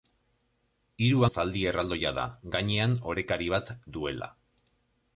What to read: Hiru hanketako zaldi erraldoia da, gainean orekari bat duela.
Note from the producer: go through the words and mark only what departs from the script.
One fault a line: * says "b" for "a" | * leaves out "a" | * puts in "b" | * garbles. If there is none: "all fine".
* leaves out "hanketako"